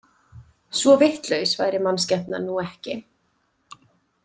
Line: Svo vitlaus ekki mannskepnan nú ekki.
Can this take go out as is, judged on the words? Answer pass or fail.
fail